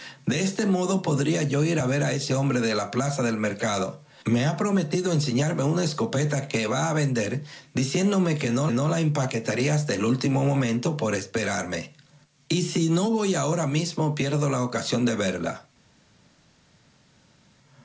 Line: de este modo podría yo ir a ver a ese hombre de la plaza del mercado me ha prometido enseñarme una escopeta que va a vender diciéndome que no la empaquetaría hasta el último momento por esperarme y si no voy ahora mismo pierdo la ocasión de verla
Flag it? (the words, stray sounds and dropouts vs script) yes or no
yes